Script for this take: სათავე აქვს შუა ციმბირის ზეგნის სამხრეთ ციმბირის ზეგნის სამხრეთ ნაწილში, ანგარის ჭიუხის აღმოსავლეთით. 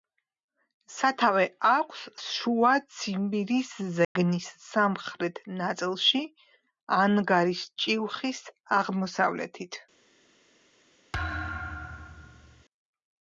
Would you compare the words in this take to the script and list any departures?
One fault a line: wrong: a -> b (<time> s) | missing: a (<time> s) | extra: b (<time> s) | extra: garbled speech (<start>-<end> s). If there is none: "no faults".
missing: ციმბირის ზეგნის სამხრეთ (5.4 s)